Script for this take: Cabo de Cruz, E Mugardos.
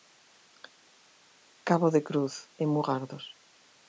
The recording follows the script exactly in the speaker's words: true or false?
true